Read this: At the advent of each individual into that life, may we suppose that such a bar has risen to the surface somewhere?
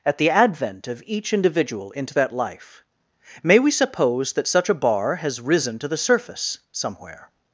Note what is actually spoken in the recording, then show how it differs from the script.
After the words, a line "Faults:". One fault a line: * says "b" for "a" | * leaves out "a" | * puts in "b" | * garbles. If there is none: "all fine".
At the advent of each individual into that life, may we suppose that such a bar has risen to the surface somewhere?
Faults:
all fine